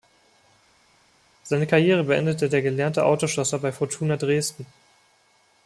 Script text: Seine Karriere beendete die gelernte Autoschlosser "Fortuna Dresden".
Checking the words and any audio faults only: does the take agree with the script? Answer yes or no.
no